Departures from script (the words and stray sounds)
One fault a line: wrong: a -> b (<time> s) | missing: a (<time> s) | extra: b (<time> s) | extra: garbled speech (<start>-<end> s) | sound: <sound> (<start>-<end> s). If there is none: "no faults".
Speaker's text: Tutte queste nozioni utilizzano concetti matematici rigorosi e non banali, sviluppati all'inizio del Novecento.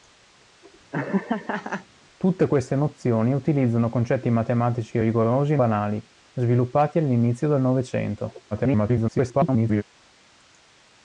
sound: laugh (0.9-1.9 s)
missing: non (5.6 s)
extra: garbled speech (8.5-9.8 s)